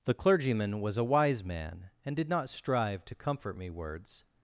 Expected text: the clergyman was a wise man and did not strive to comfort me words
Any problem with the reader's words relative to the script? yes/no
no